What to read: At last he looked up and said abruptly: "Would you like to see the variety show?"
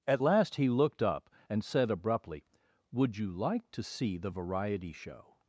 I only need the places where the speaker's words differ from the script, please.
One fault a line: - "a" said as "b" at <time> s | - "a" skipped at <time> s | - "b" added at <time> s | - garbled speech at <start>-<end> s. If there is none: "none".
none